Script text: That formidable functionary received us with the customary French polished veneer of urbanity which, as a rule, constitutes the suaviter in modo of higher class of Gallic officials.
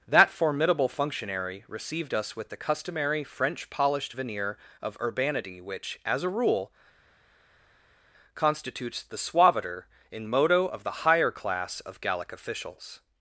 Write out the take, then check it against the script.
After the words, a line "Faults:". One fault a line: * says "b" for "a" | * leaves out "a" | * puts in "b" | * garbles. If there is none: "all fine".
That formidable functionary received us with the customary French polished veneer of urbanity which, as a rule, constitutes the suaviter in modo of the higher class of Gallic officials.
Faults:
* puts in "the"